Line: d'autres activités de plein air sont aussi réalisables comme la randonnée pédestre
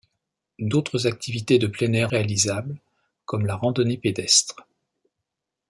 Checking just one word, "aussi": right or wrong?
wrong